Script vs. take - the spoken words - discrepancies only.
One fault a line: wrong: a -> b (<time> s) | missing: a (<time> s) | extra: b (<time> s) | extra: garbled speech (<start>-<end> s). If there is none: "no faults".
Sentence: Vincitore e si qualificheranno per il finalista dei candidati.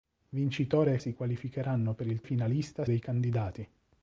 no faults